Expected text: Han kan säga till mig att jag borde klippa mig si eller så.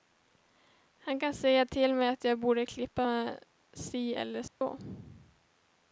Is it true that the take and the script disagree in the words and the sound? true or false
true